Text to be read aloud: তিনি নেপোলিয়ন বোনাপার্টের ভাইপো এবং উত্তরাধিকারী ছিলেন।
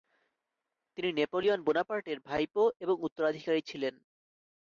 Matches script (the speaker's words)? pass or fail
pass